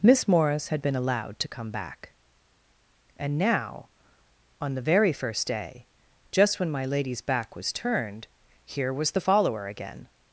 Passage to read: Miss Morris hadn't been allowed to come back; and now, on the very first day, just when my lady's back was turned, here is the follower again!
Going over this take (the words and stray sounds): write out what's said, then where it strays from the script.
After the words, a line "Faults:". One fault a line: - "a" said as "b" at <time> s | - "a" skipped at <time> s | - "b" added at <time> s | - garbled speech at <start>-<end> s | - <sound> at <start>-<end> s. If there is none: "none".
Miss Morris had been allowed to come back; and now, on the very first day, just when my lady's back was turned, here was the follower again!
Faults:
- "hadn't" said as "had" at 0.7 s
- "is" said as "was" at 8.9 s